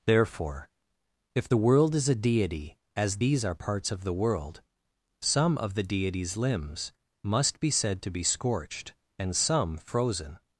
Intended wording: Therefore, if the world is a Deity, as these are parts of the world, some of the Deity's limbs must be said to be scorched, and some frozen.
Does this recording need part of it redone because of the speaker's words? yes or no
no